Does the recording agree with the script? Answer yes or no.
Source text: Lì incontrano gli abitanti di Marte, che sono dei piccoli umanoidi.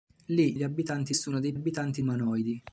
no